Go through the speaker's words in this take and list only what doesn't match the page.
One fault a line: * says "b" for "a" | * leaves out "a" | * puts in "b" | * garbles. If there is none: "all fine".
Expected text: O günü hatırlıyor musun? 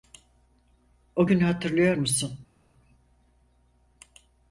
all fine